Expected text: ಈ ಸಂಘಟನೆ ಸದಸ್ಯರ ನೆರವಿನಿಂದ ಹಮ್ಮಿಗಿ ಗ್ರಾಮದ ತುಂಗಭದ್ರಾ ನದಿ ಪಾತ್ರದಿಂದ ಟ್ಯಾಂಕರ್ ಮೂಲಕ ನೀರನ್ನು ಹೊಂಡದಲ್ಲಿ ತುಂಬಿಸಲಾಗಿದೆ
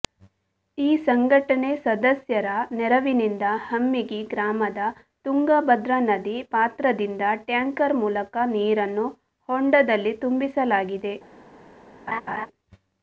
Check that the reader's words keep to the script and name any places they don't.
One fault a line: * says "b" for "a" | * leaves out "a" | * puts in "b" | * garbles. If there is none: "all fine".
all fine